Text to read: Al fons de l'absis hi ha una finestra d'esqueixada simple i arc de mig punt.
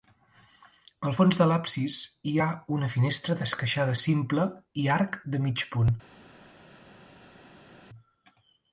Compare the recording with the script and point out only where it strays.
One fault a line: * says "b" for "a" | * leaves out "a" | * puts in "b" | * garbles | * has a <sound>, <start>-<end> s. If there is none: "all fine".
all fine